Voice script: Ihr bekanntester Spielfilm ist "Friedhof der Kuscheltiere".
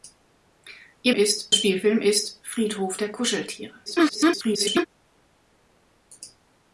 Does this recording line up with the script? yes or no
no